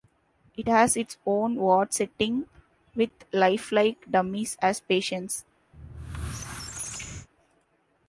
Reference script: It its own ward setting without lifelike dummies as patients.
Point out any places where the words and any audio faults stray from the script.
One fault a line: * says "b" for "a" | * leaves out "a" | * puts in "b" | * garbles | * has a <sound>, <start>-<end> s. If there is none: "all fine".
* puts in "has"
* says "with" for "without"
* has a squeak, 5.7-7.3 s